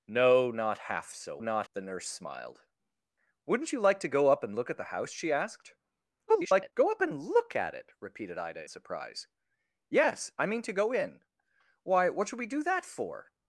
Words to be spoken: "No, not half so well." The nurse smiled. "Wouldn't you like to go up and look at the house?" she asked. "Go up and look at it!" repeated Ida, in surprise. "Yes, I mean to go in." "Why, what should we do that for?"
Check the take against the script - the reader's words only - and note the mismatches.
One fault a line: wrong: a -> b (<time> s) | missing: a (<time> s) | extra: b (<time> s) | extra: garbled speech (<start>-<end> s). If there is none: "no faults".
wrong: well -> not (1.4 s)
extra: garbled speech (6.3-6.7 s)
missing: in (8.7 s)